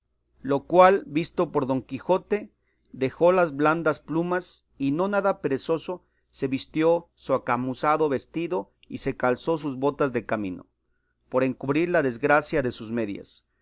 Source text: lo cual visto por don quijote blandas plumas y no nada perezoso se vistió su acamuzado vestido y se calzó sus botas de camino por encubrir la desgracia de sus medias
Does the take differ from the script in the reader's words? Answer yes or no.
yes